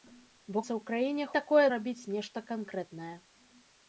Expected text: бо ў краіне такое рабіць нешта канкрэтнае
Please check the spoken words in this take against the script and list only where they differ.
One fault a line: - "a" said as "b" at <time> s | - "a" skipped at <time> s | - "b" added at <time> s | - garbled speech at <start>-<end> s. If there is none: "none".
none